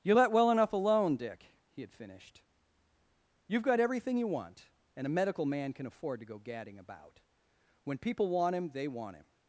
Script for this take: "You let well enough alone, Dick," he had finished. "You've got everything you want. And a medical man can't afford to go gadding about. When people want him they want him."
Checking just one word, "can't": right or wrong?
wrong